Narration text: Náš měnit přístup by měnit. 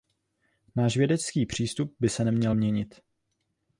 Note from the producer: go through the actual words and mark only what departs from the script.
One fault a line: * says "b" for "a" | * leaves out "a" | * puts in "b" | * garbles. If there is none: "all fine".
* says "vědecký" for "měnit"
* puts in "se neměl"